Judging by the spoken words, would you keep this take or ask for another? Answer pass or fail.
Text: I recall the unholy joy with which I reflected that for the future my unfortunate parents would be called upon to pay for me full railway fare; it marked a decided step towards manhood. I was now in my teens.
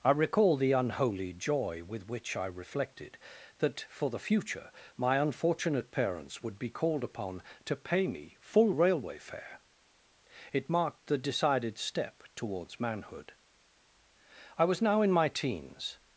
fail